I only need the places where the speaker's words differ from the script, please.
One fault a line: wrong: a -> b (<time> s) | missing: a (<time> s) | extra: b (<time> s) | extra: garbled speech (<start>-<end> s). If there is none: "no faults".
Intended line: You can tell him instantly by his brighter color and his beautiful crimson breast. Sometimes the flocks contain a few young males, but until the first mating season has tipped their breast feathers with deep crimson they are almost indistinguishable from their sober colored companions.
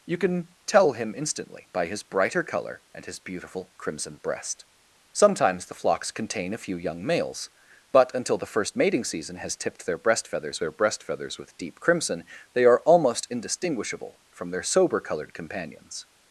extra: their breast feathers (10.6 s)